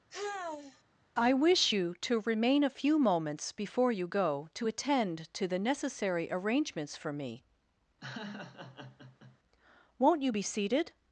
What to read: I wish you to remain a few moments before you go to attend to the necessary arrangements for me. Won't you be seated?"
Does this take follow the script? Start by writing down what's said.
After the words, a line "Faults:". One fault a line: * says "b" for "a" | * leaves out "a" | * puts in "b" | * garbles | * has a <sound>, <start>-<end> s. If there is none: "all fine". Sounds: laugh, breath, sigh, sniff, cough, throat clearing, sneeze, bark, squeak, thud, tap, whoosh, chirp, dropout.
I wish you to remain a few moments before you go to attend to the necessary arrangements for me. Won't you be seated?"
Faults:
* has a sigh, 0.1-0.8 s
* has a laugh, 8.0-9.4 s